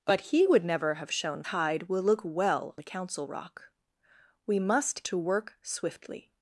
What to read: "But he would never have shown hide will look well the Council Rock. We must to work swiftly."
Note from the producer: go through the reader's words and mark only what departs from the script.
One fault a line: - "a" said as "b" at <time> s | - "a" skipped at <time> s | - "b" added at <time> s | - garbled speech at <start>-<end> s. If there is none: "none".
none